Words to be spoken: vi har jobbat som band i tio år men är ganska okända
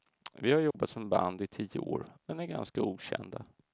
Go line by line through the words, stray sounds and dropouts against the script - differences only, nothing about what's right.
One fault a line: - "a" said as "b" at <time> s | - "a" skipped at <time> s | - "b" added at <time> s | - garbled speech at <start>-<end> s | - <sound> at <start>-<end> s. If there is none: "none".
- dropout at 0.7-0.7 s